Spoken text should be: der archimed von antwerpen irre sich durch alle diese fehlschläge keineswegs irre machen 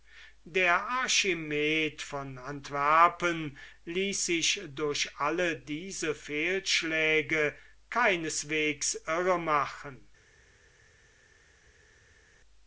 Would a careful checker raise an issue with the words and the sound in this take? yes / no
yes